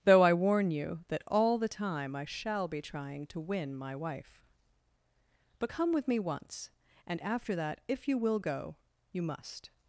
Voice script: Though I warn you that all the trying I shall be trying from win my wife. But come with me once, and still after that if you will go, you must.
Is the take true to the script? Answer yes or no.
no